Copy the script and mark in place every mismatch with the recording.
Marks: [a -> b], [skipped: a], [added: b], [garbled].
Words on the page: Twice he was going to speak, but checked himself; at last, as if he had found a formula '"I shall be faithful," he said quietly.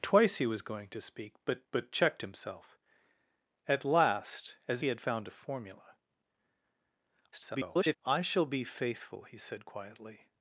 Twice he was going to speak, but [added: but] checked himself; at last, as [skipped: if] he had found a formula [garbled] '"I shall be faithful," he said quietly.